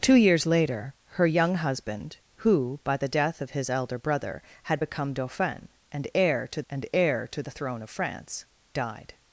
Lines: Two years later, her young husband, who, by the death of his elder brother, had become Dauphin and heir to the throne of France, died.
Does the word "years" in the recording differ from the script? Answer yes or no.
no